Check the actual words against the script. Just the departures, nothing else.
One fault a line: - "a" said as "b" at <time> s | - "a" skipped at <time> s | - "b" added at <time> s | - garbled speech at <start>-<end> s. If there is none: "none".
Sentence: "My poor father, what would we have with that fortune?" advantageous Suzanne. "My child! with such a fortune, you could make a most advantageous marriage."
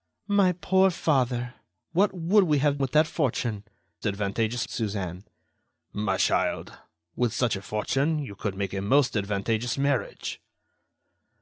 none